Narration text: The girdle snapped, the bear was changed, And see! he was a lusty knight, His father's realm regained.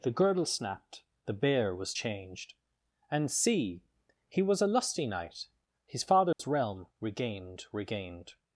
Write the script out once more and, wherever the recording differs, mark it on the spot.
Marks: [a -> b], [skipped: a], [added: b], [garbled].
The girdle snapped, the bear was changed, And see! he was a lusty knight, His father's realm regained. [added: regained]